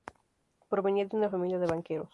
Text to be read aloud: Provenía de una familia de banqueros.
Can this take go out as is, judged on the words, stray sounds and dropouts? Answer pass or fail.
pass